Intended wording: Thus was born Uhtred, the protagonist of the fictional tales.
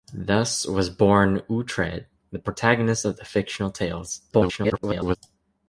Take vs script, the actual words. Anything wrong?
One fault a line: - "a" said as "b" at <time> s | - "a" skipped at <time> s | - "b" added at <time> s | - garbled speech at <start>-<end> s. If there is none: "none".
- garbled speech at 4.3-5.2 s